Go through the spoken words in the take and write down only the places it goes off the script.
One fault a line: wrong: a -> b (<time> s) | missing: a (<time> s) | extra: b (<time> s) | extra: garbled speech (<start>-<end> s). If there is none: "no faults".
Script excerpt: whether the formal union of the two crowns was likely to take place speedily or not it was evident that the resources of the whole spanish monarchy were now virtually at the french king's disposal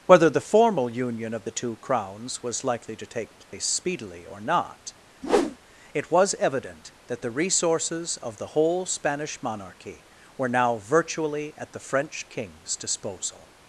no faults